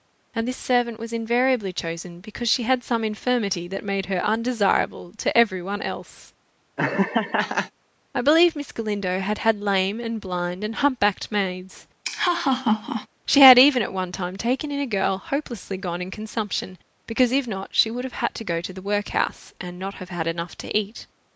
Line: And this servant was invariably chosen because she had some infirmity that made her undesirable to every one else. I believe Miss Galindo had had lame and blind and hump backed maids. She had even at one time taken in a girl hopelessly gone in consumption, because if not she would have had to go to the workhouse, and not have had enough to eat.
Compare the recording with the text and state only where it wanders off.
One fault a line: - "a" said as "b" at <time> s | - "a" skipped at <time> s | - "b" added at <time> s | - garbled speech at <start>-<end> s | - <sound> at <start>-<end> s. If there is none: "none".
- laugh at 6.8-7.7 s
- laugh at 12.0-13.1 s